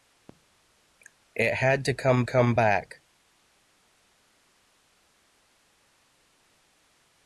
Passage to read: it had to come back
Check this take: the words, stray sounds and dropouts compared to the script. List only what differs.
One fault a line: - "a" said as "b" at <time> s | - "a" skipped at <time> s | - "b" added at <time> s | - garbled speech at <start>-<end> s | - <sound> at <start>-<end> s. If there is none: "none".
- "come" added at 2.2 s